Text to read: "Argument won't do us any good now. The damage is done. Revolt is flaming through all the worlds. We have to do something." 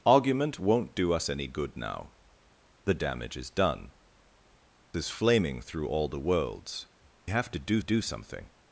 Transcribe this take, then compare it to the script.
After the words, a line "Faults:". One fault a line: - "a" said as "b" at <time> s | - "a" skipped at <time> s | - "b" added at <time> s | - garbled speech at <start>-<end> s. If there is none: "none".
"Argument won't do us any good now. The damage is done. Is flaming through all the worlds. Have to do do something."
Faults:
- "Revolt" skipped at 3.9 s
- "We" skipped at 6.9 s
- "do" added at 7.8 s